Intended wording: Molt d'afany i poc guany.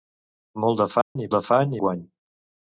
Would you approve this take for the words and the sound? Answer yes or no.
no